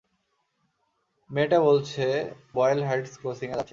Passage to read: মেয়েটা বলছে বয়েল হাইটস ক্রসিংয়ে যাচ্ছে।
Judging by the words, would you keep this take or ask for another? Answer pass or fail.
pass